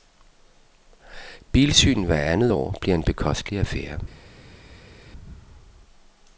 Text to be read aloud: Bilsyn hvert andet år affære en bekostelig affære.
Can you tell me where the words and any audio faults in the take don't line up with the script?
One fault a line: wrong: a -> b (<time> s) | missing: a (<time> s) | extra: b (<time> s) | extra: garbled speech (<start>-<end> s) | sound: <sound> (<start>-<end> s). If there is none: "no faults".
wrong: affære -> bliver (2.8 s)